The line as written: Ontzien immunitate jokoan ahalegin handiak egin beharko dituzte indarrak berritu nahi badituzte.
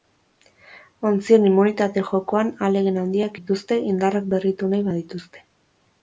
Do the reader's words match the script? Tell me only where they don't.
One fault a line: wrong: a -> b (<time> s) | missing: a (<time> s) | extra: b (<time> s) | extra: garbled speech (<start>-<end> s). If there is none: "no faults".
missing: egin beharko (3.4 s)